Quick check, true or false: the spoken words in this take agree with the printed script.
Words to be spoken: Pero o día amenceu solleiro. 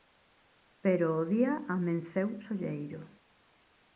true